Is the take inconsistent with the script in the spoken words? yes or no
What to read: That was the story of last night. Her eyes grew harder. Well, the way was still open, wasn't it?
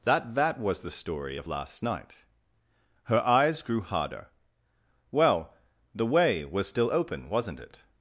yes